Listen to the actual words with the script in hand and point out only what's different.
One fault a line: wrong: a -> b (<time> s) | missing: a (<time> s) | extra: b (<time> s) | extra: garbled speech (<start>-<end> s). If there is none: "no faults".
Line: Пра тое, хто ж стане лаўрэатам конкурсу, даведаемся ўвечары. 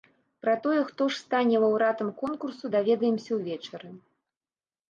no faults